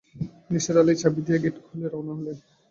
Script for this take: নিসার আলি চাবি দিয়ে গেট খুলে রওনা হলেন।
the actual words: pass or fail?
pass